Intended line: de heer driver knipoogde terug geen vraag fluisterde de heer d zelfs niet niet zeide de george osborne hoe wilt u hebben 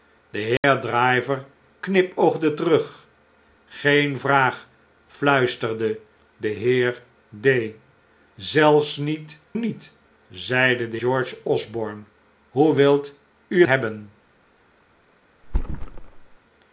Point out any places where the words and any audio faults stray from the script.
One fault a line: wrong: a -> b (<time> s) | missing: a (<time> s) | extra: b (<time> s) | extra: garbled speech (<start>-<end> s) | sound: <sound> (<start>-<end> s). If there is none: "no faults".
sound: dropout (0.6-0.6 s)
sound: thud (15.4-16.4 s)